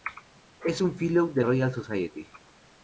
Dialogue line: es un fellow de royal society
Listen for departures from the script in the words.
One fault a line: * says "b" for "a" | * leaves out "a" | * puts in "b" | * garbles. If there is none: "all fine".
all fine